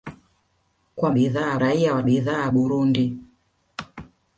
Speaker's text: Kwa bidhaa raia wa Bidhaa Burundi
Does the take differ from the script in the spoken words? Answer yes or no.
no